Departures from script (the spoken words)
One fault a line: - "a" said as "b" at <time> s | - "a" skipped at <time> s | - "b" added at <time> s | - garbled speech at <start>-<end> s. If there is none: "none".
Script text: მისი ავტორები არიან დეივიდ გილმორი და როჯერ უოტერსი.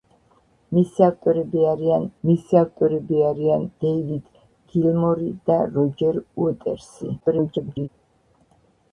- "მისი ავტორები არიან" added at 2.3 s
- garbled speech at 7.2-7.9 s